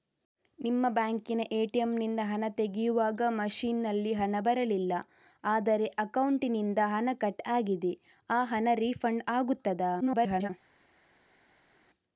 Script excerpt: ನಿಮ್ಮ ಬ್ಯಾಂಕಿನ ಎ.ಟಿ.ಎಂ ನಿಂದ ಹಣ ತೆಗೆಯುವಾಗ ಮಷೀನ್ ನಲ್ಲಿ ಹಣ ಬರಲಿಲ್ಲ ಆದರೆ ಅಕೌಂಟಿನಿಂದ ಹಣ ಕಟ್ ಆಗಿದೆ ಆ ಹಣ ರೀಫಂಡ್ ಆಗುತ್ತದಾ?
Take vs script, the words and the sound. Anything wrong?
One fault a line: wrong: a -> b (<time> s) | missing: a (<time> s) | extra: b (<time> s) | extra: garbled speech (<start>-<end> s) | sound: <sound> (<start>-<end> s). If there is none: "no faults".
extra: garbled speech (10.0-10.5 s)